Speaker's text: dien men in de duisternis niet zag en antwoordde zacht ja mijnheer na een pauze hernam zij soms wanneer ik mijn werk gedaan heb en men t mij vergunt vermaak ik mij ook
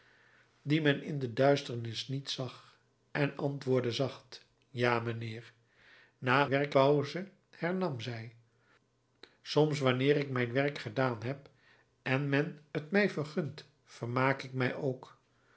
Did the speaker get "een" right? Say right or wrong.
wrong